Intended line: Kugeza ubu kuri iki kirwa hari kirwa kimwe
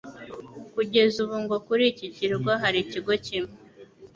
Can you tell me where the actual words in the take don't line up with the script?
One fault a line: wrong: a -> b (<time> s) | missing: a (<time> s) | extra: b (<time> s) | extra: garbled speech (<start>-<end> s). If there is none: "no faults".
extra: ngo (1.4 s)
wrong: kirwa -> ikigo (2.8 s)